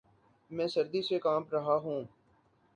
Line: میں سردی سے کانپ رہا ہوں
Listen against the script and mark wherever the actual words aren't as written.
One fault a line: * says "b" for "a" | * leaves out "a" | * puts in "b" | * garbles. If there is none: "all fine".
all fine